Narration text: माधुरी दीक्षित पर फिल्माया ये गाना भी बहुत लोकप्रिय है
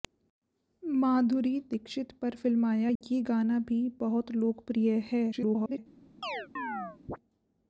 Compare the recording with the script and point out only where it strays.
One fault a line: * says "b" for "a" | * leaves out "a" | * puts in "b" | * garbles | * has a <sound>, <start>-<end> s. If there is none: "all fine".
* has a dropout, 3.0-3.0 s
* garbles
* has a chirp, 6.2-7.2 s